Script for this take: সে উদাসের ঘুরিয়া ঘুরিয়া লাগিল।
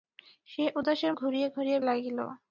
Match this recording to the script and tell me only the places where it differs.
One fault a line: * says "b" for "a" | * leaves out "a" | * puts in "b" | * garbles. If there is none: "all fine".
all fine